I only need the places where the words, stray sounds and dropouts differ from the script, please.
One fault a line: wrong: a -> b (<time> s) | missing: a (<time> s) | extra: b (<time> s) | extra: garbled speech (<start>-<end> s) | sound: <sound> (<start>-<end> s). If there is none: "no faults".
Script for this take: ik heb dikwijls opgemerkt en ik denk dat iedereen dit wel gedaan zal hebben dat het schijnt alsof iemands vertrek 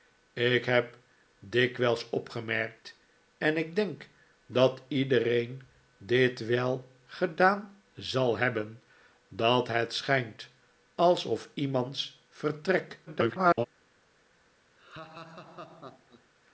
extra: garbled speech (13.1-13.7 s)
sound: laugh (14.8-16.3 s)